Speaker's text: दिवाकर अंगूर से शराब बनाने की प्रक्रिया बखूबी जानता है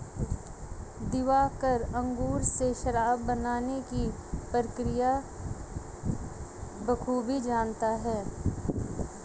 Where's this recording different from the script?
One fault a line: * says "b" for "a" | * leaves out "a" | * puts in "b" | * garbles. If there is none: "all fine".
all fine